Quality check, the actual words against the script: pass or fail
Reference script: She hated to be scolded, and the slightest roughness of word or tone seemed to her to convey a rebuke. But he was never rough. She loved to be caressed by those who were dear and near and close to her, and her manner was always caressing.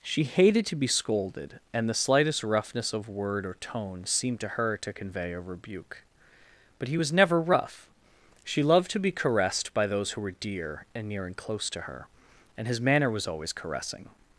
fail